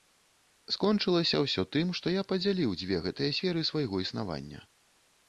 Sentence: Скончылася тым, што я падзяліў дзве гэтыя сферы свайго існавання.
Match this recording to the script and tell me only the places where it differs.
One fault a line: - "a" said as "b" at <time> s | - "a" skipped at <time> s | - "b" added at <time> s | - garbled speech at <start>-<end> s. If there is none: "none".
- "ўсё" added at 1.4 s